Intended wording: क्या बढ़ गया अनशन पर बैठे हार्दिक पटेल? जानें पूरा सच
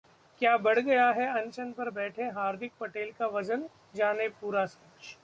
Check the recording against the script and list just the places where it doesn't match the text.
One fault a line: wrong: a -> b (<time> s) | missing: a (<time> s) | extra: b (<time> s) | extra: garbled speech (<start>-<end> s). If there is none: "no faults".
extra: है (1.1 s)
extra: का वजन (3.1 s)